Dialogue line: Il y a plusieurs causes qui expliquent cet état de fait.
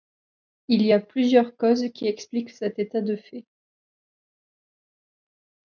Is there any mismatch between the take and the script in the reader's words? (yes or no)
no